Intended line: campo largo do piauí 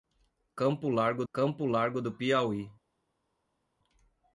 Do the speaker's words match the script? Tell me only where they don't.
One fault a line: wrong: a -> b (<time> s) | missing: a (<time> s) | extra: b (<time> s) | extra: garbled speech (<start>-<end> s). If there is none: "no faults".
extra: campo largo (1.3 s)